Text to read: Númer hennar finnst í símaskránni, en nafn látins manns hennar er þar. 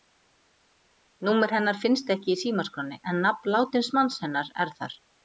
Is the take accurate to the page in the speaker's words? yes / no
no